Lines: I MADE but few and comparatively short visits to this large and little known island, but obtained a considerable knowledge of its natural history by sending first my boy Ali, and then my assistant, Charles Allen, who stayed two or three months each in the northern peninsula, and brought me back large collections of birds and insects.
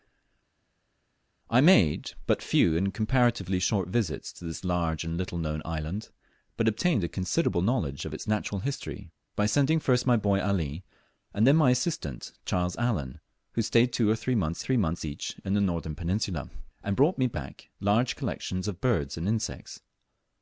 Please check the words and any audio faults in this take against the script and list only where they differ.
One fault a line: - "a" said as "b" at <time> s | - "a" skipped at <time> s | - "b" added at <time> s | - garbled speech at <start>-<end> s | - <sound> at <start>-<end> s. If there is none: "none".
- "three months" added at 14.6 s